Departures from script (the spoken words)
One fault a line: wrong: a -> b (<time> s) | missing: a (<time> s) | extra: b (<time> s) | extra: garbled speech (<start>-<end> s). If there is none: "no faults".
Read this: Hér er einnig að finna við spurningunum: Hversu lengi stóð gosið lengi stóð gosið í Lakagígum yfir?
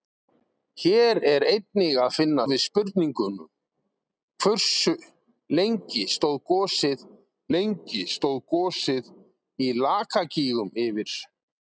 no faults